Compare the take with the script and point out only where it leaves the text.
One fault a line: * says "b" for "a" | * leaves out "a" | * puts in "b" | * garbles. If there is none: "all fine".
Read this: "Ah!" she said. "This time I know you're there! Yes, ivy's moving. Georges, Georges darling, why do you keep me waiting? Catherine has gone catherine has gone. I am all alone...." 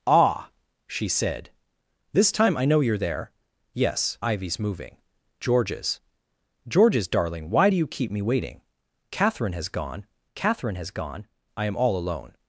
all fine